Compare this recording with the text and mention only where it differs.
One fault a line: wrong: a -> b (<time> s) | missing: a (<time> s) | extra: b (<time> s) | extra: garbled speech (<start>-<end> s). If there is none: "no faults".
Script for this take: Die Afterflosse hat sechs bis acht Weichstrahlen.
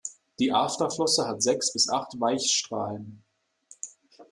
no faults